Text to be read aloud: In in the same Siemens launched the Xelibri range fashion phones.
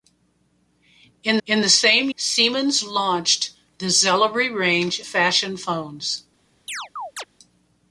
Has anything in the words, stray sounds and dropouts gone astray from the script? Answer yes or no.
yes